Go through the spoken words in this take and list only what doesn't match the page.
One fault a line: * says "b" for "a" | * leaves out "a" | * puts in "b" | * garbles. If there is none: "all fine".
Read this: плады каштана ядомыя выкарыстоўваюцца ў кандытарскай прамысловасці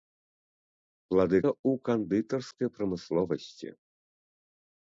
* leaves out "каштана ядомыя выкарыстоўваюцца"